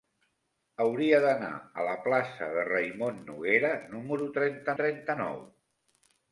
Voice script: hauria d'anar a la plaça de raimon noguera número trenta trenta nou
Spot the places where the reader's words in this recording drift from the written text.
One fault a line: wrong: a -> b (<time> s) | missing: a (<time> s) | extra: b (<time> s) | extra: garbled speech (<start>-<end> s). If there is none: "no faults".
no faults